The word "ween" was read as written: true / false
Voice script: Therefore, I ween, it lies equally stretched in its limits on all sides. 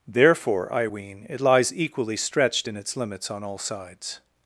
true